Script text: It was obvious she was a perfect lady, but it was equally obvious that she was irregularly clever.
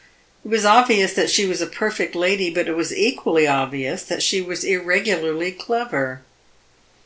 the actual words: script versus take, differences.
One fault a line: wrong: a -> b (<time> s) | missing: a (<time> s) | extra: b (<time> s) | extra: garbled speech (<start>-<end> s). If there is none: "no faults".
extra: that (1.1 s)